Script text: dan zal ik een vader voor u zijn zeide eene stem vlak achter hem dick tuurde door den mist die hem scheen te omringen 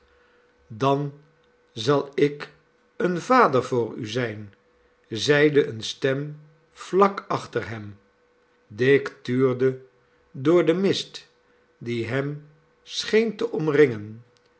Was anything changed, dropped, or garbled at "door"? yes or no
no